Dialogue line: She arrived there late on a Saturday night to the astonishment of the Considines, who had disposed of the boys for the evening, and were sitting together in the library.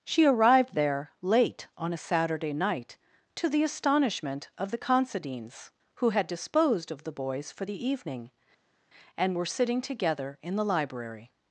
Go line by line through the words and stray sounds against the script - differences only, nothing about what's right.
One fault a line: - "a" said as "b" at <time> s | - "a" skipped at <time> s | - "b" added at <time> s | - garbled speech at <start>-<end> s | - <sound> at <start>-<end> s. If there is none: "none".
none